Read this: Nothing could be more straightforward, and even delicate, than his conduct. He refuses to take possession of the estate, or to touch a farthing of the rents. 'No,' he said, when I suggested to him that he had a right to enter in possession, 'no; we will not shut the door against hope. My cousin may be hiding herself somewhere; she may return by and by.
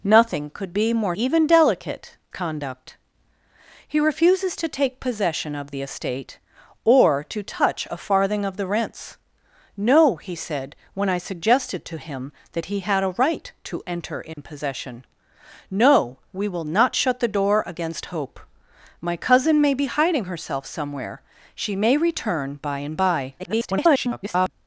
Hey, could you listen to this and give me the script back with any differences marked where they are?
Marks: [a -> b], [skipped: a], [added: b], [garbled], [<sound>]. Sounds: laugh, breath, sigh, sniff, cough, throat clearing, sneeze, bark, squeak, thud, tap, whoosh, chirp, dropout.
Nothing could be more [skipped: straightforward, and] even delicate, [skipped: than his] conduct. He refuses to take possession of the estate, or to touch a farthing of the rents. 'No,' he said, when I suggested to him that he had a right to enter in [dropout] possession, 'no; we will not shut the door against hope. My cousin may be hiding herself somewhere; she may return by and by. [garbled]